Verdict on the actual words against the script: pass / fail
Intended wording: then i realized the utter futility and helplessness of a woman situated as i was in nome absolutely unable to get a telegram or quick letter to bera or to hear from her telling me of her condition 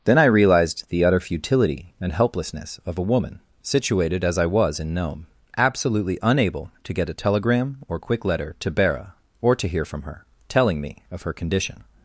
pass